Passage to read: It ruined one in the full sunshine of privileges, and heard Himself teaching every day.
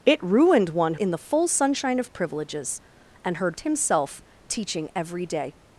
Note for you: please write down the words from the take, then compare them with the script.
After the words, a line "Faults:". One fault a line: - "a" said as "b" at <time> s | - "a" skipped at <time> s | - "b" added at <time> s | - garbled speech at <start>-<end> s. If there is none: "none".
It ruined one in the full sunshine of privileges, and heard Himself teaching every day.
Faults:
none